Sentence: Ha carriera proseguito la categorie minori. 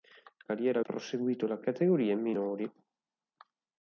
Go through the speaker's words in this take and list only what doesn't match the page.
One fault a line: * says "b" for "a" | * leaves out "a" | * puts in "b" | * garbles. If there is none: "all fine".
all fine